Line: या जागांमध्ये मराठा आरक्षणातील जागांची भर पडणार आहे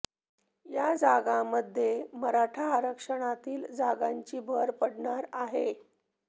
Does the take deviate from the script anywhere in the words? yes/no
no